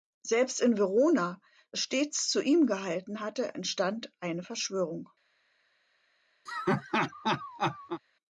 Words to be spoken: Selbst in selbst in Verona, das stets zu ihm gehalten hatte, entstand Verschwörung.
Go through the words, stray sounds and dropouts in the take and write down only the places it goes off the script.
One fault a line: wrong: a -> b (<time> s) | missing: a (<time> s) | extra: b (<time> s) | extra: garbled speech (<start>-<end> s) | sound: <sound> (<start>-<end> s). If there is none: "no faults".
missing: selbst in (0.8 s)
extra: eine (4.2 s)
sound: laugh (6.5-8.0 s)